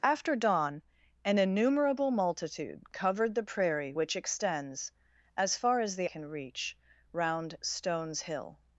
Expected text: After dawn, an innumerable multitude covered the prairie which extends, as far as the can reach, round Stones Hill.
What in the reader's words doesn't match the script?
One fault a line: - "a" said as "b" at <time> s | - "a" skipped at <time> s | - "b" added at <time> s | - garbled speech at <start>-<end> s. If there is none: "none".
none